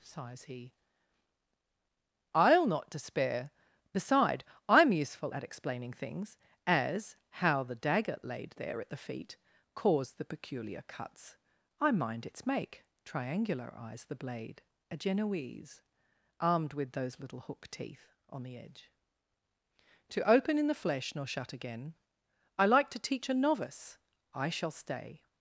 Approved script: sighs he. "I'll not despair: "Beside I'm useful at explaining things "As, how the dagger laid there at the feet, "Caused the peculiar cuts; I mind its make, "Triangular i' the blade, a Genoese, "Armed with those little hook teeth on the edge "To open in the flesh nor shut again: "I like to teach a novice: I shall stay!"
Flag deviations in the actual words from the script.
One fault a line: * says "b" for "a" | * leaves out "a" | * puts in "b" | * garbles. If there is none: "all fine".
* says "eyes" for "i"